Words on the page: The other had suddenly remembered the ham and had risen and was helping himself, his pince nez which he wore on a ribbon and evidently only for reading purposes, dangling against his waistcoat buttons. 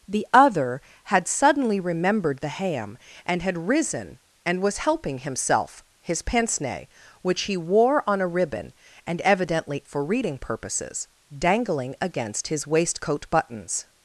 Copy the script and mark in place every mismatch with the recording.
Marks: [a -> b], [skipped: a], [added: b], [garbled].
The other had suddenly remembered the ham and had risen and was helping himself, his pince nez which he wore on a ribbon and evidently [skipped: only] for reading purposes, dangling against his waistcoat buttons.